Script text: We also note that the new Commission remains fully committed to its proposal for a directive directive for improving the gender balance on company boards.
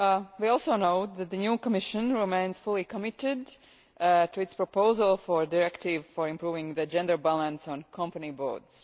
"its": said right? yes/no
yes